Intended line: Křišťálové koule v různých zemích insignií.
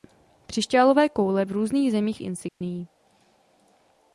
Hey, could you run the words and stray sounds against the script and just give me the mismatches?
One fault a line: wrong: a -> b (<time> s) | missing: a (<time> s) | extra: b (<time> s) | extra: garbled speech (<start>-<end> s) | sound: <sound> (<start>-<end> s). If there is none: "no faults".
sound: dropout (2.5-2.6 s)